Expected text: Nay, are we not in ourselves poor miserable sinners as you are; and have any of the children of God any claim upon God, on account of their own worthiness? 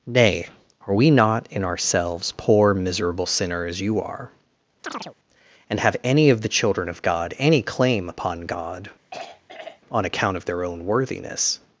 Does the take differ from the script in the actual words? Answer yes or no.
yes